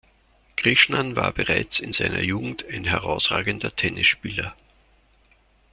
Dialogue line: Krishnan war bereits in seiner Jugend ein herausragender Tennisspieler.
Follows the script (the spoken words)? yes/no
yes